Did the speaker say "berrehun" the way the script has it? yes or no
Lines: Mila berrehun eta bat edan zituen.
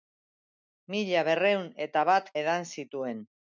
yes